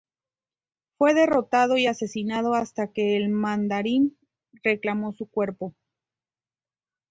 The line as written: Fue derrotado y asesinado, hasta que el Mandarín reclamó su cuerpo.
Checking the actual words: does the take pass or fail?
pass